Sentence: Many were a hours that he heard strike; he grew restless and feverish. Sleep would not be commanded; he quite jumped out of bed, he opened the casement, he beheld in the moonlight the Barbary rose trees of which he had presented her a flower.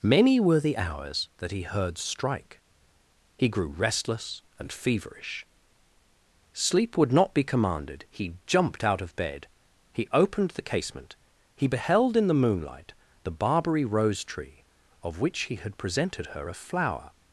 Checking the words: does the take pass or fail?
fail